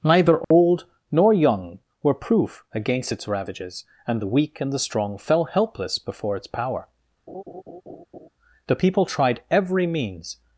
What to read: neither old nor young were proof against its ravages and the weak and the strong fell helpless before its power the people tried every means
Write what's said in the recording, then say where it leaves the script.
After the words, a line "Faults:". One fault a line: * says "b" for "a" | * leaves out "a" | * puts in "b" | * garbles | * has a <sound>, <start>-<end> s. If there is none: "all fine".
neither old nor young were proof against its ravages and the weak and the strong fell helpless before its power the people tried every means
Faults:
* has a dropout, 0.4-0.5 s
* has a laugh, 7.3-8.3 s